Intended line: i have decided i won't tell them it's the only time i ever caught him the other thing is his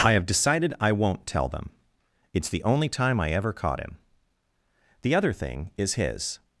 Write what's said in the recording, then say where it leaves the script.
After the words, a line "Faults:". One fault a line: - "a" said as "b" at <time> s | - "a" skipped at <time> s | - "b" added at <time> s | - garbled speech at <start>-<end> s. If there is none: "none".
i have decided i won't tell them it's the only time i ever caught him the other thing is his
Faults:
none